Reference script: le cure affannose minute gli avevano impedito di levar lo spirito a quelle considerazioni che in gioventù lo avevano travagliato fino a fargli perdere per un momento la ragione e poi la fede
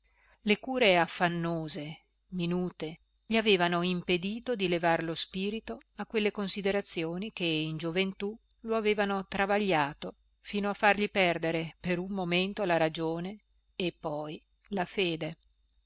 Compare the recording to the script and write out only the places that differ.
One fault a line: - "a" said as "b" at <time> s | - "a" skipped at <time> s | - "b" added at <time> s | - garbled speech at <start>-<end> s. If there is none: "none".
none